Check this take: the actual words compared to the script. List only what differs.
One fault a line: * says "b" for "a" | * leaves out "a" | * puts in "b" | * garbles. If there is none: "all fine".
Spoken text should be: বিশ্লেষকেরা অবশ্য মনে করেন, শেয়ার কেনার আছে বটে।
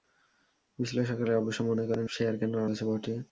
all fine